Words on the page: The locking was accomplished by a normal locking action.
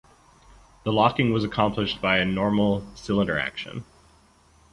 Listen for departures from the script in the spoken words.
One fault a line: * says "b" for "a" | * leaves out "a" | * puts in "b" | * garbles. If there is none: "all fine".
* says "cylinder" for "locking"